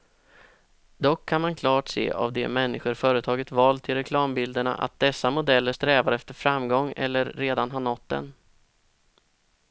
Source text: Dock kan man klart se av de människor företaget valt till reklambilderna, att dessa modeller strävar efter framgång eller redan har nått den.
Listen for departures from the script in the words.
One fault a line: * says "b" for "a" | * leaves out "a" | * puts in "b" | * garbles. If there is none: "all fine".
all fine